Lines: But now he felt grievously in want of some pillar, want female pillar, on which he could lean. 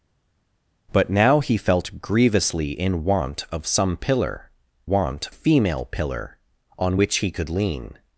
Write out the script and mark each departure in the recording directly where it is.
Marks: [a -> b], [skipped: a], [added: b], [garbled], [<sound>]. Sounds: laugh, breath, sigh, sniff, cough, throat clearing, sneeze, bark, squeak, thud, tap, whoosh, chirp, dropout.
But now he felt grievously in want of some pillar, want female pillar, on which he could lean.